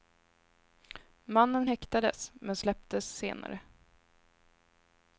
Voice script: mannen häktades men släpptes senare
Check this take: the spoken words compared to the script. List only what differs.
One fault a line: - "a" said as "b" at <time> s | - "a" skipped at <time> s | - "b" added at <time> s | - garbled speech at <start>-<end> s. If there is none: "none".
none